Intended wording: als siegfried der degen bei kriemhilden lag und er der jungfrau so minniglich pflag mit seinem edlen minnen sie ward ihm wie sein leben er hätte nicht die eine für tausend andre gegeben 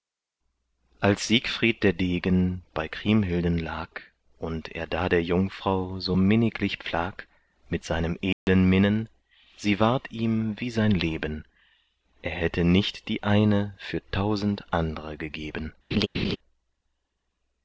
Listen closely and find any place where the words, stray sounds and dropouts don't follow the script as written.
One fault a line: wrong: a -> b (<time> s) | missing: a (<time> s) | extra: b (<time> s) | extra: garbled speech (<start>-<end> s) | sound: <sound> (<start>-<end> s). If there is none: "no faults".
extra: da (4.9 s)
sound: dropout (8.3-8.5 s)
sound: laugh (15.9-16.4 s)